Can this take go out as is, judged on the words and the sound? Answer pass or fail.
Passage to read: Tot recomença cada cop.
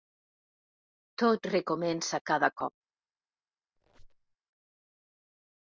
fail